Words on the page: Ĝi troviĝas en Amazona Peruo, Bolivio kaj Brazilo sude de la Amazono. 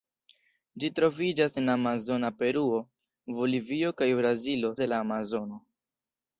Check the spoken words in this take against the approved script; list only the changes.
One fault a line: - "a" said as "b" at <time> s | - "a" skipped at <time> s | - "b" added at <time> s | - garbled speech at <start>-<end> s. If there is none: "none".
- "sude" skipped at 4.7 s